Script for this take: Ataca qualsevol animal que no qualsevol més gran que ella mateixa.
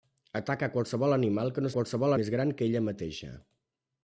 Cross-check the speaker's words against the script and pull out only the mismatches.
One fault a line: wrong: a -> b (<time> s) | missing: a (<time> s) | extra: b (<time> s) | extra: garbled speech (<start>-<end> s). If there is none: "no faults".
no faults